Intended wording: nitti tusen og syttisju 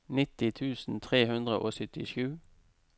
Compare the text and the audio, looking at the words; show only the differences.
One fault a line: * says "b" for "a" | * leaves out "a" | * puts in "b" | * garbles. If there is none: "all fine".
* puts in "tre hundre"